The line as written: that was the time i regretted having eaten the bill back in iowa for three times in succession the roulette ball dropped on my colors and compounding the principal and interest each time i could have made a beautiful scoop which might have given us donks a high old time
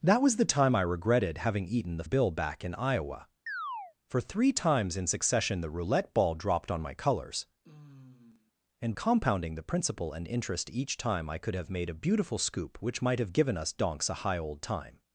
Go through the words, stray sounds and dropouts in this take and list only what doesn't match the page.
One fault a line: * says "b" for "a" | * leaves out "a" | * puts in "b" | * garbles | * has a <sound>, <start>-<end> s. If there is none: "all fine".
* has a chirp, 3.5-3.9 s
* has a sigh, 7.6-8.5 s